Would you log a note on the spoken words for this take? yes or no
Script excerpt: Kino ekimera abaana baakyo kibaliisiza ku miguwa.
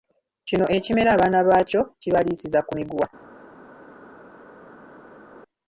no